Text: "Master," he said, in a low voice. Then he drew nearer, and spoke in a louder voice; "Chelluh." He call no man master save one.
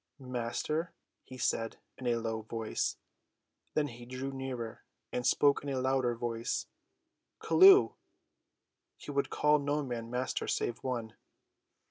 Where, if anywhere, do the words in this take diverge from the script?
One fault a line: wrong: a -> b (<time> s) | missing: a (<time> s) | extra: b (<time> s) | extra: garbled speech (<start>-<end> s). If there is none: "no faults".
extra: would (9.1 s)